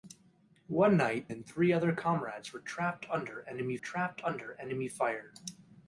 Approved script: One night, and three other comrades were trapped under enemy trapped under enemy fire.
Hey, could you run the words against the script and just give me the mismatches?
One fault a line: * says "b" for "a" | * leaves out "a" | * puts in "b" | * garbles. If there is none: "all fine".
all fine